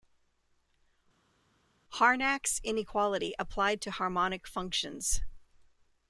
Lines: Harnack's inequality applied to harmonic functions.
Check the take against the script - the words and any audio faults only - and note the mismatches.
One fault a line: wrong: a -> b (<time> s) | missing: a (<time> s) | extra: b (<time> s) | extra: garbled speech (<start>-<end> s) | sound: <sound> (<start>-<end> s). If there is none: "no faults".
no faults